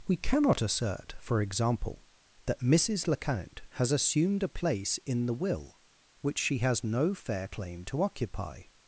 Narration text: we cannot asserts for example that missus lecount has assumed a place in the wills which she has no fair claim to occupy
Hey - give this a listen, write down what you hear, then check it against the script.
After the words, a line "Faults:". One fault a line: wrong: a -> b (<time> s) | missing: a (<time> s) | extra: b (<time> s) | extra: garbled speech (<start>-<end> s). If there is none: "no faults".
we cannot assert for example that missus lecount has assumed a place in the will which she has no fair claim to occupy
Faults:
wrong: asserts -> assert (0.6 s)
wrong: wills -> will (5.3 s)